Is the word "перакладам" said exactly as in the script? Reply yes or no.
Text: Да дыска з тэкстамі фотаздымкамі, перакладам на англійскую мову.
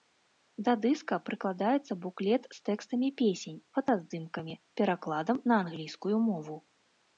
yes